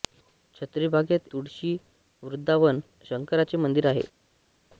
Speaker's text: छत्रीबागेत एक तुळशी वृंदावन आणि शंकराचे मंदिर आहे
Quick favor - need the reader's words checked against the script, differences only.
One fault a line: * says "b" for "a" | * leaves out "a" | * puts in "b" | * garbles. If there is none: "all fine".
* leaves out "एक"
* leaves out "आणि"